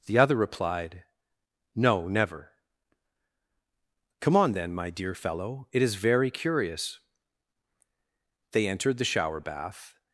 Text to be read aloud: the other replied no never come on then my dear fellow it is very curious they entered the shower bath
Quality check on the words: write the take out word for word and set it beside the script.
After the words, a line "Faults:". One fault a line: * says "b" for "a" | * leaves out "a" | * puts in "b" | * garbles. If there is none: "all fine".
the other replied no never come on then my dear fellow it is very curious they entered the shower bath
Faults:
all fine